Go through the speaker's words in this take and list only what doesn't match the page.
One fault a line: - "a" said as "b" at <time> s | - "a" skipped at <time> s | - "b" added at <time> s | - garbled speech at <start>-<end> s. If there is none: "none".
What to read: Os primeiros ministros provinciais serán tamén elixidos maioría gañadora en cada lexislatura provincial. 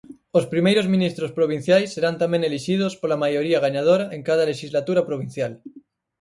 - "pola" added at 3.0 s